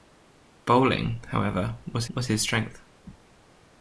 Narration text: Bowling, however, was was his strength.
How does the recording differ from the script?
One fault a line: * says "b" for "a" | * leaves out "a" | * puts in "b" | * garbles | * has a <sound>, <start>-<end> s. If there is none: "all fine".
all fine